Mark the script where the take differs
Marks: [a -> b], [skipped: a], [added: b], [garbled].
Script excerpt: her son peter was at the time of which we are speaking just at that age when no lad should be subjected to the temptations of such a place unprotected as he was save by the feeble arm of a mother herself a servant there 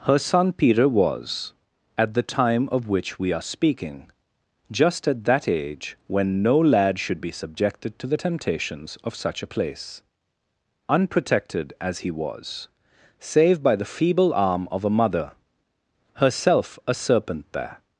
her son peter was at the time of which we are speaking just at that age when no lad should be subjected to the temptations of such a place unprotected as he was save by the feeble arm of a mother herself a [servant -> serpent] there